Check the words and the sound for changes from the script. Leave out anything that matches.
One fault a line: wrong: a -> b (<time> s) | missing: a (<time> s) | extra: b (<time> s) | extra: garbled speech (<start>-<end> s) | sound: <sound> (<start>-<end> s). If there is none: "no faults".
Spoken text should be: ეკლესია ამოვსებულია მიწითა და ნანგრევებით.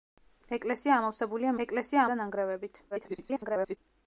wrong: მიწითა -> ეკლესია (1.6 s)
extra: garbled speech (2.9-3.8 s)